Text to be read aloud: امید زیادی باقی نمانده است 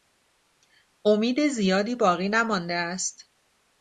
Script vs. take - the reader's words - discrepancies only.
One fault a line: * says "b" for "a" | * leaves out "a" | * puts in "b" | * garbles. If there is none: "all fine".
all fine